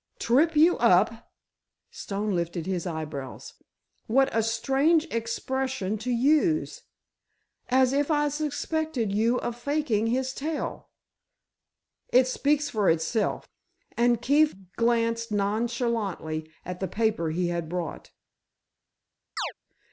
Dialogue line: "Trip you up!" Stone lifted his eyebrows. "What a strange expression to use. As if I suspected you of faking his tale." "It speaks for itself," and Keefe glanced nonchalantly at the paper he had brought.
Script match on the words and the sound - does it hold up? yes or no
no